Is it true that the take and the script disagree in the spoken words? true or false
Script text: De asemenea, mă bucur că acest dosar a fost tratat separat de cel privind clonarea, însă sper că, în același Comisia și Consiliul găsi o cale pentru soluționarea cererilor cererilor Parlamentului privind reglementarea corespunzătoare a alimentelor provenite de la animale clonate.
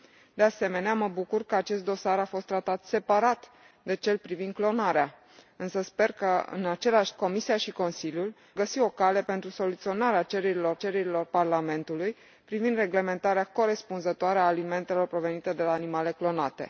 false